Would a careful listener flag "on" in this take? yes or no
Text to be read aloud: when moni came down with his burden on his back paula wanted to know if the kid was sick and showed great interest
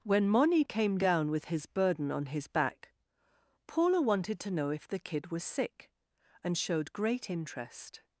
no